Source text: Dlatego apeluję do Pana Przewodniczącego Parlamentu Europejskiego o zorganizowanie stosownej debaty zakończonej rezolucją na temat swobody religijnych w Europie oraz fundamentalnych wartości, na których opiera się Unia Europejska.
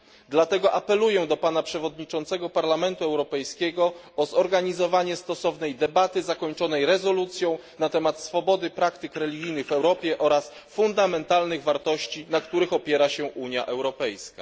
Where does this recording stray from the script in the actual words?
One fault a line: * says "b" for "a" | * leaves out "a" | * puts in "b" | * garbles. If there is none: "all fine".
* puts in "praktyk"